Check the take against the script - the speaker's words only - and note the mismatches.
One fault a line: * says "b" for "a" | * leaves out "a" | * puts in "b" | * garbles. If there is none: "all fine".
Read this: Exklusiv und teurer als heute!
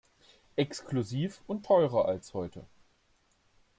all fine